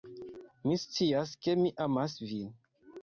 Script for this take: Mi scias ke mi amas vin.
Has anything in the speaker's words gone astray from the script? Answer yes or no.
no